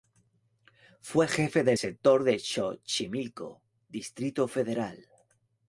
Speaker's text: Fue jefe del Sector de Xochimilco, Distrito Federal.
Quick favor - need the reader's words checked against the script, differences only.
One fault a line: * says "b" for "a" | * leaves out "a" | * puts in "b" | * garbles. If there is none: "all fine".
all fine